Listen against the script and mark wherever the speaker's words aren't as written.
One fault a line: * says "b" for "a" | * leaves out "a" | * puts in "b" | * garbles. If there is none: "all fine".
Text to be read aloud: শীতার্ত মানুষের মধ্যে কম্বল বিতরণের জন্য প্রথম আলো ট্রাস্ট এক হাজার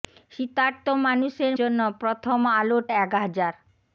* leaves out "মধ্যে কম্বল বিতরণের"
* leaves out "ট্রাস্ট"